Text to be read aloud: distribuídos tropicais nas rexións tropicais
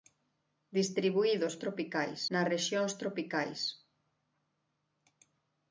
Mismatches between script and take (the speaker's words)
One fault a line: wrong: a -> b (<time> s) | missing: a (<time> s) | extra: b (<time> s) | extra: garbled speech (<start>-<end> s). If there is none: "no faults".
no faults